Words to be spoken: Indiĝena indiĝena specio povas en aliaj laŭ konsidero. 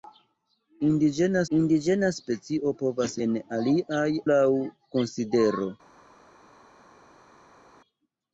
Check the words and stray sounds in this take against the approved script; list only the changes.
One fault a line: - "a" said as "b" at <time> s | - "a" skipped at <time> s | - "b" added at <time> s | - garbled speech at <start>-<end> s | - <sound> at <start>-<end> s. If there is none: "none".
none